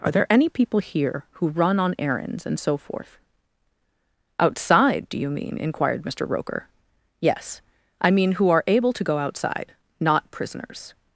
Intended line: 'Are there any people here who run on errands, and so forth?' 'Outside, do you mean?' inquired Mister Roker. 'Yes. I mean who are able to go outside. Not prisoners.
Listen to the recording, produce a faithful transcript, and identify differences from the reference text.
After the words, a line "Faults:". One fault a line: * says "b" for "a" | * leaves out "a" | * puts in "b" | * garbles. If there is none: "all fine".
'Are there any people here who run on errands, and so forth?' 'Outside, do you mean?' inquired Mister Roker. 'Yes. I mean who are able to go outside. Not prisoners.
Faults:
all fine